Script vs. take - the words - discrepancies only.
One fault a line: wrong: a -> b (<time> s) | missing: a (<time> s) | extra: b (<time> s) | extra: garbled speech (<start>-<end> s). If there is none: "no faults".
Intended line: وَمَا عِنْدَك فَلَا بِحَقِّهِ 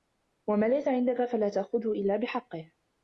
extra: لَيْسَ (0.7 s)
extra: تَأْخُذْهُ إلَّا (1.5 s)